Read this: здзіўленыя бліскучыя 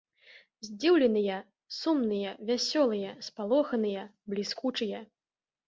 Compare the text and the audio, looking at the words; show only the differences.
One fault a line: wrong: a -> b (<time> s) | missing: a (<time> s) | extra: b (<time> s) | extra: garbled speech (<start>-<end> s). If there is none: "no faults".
extra: сумныя вясёлыя спалоханыя (1.8 s)